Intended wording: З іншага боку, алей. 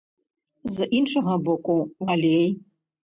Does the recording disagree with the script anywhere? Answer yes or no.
no